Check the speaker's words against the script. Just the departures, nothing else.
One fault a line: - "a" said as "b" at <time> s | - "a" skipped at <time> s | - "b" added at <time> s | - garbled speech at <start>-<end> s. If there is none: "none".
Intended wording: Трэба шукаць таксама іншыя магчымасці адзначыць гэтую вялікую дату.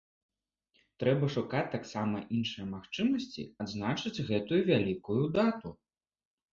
none